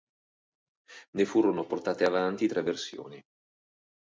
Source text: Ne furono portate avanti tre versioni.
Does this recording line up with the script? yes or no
yes